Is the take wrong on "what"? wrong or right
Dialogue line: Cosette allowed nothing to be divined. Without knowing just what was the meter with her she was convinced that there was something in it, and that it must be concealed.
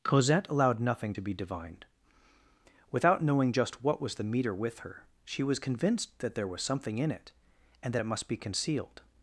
right